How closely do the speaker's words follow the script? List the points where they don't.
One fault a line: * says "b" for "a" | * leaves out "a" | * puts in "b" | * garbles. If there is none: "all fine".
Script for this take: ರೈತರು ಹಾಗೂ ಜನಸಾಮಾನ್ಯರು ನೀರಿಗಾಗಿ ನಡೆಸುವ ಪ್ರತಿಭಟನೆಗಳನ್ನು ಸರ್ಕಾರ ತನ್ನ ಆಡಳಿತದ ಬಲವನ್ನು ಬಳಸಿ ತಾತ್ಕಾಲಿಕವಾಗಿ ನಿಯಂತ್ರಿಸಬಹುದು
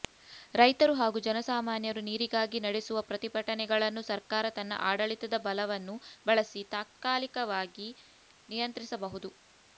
all fine